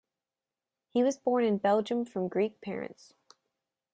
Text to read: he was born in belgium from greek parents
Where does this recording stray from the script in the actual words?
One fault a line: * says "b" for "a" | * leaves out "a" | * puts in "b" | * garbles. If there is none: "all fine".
all fine